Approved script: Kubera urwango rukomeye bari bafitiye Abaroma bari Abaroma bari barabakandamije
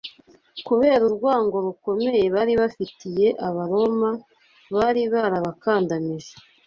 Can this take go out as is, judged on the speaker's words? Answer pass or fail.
fail